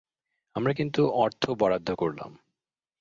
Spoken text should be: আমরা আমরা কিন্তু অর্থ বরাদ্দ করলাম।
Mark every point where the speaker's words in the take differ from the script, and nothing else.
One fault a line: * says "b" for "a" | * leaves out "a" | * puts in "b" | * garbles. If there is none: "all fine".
* leaves out "আমরা"